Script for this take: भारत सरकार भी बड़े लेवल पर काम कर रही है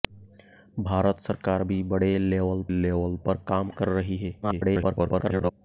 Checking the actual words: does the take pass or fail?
fail